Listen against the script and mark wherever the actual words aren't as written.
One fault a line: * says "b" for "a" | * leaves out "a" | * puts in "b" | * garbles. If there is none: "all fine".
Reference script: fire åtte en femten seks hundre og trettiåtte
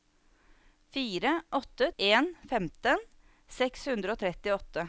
all fine